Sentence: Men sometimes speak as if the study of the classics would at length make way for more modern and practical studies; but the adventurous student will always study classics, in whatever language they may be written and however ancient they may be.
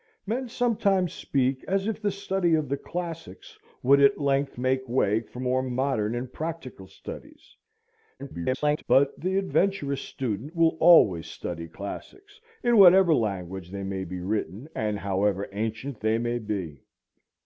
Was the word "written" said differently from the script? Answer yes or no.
no